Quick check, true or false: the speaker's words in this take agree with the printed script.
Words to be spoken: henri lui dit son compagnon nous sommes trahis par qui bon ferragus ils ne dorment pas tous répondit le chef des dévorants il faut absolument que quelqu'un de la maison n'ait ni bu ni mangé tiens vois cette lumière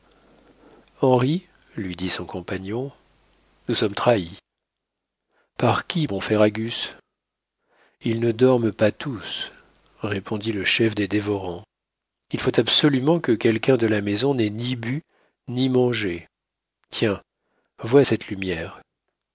true